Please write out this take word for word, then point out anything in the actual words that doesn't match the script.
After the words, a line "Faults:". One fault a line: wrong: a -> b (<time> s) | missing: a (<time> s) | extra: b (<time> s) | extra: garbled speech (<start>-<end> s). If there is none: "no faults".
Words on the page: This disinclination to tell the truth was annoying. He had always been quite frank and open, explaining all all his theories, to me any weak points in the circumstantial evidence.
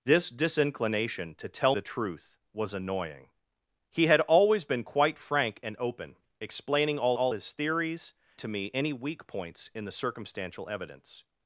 This disinclination to tell the truth was annoying. He had always been quite frank and open, explaining all all his theories, to me any weak points in the circumstantial evidence.
Faults:
no faults